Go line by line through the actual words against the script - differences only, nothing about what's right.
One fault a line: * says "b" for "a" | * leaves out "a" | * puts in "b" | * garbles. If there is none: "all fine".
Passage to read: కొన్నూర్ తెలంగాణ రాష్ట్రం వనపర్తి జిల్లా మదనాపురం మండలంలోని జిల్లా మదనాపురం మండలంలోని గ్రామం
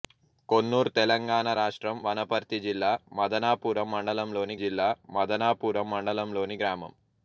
all fine